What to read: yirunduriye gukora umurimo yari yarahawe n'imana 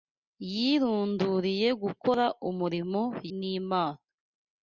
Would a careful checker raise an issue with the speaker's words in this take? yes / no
yes